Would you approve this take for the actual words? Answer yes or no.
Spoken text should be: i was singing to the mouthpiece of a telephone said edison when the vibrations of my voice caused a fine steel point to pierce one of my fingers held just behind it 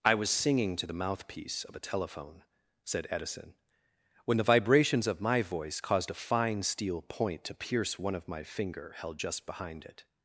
no